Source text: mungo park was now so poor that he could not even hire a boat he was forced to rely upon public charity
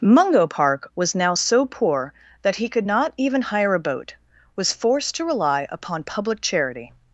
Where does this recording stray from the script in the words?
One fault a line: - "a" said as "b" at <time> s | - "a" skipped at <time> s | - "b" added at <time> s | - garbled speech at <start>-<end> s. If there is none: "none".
- "he" skipped at 4.1 s